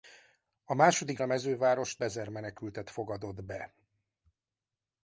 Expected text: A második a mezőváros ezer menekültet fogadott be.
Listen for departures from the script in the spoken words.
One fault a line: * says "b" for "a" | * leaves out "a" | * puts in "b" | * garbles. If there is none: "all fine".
all fine